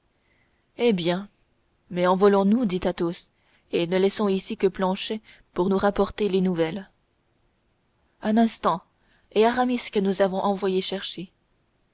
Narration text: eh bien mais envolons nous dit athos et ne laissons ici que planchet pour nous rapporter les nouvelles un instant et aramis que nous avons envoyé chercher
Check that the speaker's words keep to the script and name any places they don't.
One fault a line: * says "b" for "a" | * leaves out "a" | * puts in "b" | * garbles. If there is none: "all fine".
all fine